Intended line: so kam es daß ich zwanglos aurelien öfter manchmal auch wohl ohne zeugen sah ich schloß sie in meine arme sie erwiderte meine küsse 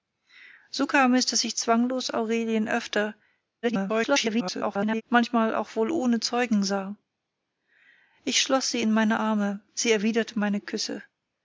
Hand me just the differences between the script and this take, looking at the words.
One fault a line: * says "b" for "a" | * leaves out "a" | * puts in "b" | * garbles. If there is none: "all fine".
* garbles